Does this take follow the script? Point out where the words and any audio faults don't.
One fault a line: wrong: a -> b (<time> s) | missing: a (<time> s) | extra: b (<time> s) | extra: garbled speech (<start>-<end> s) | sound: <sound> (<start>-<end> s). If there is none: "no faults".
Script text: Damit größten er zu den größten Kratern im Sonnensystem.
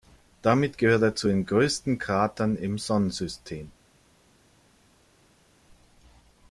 wrong: größten -> gehört (0.8 s)